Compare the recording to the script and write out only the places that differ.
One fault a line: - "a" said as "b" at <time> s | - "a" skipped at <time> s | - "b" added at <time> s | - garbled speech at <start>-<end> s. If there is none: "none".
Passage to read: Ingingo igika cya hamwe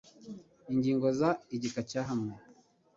- "za" added at 1.2 s